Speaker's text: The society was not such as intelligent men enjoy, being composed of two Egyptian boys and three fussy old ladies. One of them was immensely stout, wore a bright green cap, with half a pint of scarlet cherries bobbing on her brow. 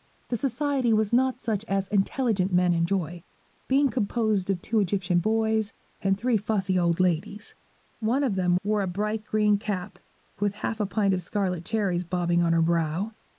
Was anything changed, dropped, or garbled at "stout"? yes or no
yes